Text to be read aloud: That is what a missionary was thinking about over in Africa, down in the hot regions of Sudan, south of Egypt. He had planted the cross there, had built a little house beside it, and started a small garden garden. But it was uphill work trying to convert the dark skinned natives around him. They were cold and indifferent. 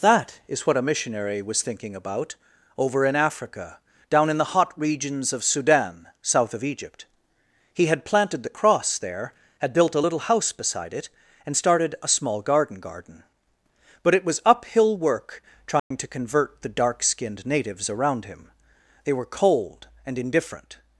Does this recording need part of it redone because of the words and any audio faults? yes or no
yes